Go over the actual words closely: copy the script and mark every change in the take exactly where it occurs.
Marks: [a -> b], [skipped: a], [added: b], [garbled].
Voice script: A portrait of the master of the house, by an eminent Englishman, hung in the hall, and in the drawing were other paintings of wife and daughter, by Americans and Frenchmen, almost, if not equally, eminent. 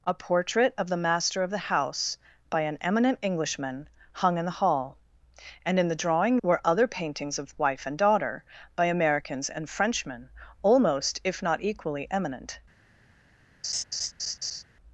A portrait of the master of the house, by an eminent Englishman, hung in the hall, and in the drawing were other paintings of wife and daughter, by Americans and Frenchmen, almost, if not equally, eminent.